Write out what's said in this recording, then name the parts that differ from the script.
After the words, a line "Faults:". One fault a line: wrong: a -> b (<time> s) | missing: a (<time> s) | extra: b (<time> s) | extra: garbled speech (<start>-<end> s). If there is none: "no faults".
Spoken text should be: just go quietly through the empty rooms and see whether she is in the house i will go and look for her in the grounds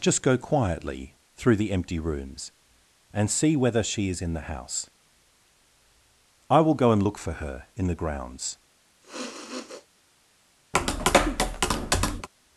just go quietly through the empty rooms and see whether she is in the house i will go and look for her in the grounds
Faults:
no faults